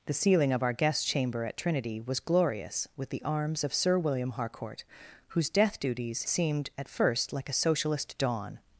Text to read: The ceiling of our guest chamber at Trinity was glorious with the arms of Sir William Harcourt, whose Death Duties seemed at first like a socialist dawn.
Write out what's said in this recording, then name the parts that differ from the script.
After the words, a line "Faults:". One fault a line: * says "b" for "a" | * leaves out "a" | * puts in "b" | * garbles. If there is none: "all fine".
The ceiling of our guest chamber at Trinity was glorious with the arms of Sir William Harcourt, whose Death Duties seemed at first like a socialist dawn.
Faults:
all fine